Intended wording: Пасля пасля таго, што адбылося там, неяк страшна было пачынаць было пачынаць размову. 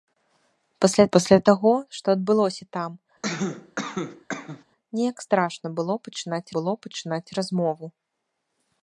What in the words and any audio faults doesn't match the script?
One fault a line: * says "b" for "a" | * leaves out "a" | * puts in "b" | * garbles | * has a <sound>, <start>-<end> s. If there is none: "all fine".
* has a cough, 3.2-4.6 s